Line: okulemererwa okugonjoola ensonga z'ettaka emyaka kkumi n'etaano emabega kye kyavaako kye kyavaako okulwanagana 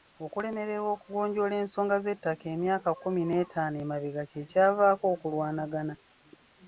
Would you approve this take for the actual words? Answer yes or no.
no